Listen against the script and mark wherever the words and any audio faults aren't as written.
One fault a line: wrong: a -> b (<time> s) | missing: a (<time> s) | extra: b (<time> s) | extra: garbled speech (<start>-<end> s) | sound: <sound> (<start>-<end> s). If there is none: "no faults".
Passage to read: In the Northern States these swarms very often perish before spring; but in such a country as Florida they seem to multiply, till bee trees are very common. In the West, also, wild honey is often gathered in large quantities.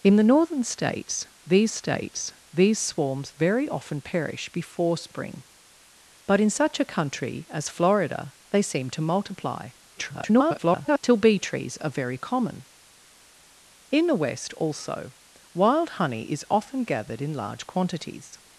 extra: States these (1.7 s)
extra: garbled speech (9.9-11.0 s)